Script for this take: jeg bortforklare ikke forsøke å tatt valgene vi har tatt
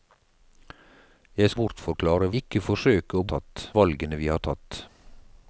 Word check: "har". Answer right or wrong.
right